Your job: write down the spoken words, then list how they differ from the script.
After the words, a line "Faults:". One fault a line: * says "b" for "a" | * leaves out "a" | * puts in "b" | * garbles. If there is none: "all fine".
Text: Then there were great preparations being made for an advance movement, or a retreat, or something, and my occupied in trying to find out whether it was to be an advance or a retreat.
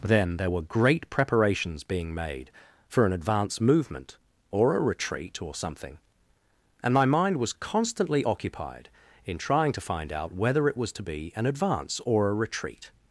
Then there were great preparations being made for an advance movement, or a retreat, or something, and my mind was constantly occupied in trying to find out whether it was to be an advance or a retreat.
Faults:
* puts in "mind was constantly"